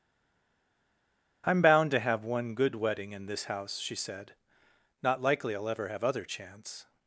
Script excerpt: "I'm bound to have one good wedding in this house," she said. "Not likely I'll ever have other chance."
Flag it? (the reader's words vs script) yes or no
no